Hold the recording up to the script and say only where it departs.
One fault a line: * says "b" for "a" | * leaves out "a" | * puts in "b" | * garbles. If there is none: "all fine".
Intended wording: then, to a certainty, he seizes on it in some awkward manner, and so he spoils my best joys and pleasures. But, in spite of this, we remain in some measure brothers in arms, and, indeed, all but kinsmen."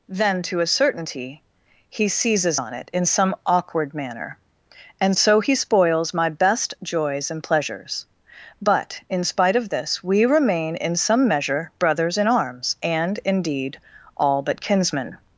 all fine